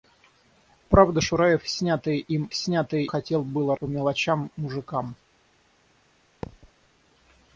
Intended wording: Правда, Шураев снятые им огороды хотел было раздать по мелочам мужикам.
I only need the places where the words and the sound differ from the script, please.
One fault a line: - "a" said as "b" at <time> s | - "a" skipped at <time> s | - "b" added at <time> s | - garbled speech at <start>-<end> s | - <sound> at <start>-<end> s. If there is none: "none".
- "огороды" said as "снятые" at 2.5 s
- "раздать" skipped at 3.7 s
- thud at 6.4-6.7 s